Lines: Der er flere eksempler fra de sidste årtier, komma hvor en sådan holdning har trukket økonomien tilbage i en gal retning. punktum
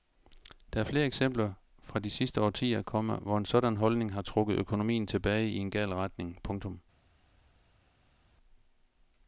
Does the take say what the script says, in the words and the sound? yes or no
yes